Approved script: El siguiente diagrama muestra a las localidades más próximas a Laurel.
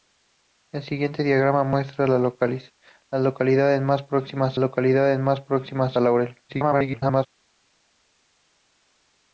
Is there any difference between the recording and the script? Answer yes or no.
yes